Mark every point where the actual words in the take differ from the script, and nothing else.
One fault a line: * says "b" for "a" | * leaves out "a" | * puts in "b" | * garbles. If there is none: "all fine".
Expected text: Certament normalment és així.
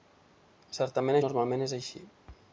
all fine